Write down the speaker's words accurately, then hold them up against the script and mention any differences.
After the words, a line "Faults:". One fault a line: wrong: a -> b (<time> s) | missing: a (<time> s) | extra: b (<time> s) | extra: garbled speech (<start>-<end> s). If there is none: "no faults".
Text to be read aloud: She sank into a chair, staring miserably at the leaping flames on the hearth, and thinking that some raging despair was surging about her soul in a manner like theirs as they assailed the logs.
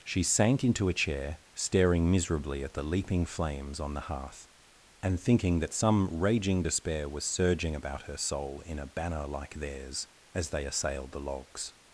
She sank into a chair, staring miserably at the leaping flames on the hearth, and thinking that some raging despair was surging about her soul in a banner like theirs as they assailed the logs.
Faults:
wrong: manner -> banner (8.9 s)